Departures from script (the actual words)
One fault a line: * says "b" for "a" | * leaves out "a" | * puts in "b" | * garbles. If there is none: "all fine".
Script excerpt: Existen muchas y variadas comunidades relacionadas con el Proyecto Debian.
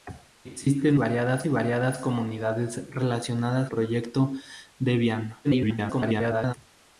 * says "variadas" for "muchas"
* leaves out "con el"
* garbles